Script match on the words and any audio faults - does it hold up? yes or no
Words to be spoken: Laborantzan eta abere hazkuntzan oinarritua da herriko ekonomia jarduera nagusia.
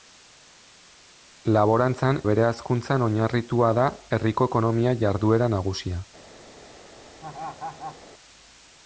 no